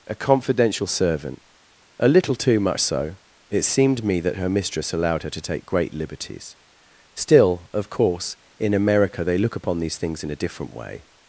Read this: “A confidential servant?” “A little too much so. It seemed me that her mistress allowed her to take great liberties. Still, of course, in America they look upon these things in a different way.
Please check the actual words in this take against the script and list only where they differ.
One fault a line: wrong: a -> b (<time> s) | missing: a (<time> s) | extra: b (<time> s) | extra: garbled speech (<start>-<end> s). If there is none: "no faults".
no faults